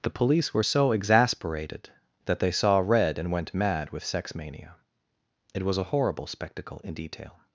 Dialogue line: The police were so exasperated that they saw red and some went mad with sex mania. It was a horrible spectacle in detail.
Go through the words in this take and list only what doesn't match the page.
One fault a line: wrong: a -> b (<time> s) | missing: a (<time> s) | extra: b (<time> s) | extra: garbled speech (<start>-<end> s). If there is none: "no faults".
missing: some (3.3 s)